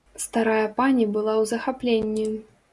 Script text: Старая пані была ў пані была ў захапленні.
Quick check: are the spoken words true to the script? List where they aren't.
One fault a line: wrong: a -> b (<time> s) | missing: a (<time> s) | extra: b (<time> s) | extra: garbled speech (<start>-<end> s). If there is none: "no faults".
missing: пані была ў (1.5 s)